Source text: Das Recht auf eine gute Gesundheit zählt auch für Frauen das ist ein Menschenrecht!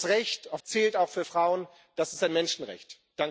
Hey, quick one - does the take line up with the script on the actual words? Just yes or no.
no